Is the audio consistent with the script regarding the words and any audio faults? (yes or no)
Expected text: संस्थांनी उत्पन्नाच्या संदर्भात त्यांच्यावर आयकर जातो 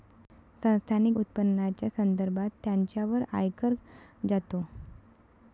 yes